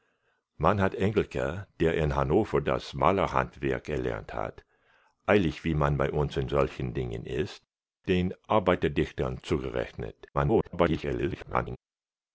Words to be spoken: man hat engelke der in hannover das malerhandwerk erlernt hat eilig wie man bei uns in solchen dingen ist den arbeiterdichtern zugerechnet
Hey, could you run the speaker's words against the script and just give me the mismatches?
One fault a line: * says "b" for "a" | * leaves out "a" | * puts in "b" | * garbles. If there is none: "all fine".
* garbles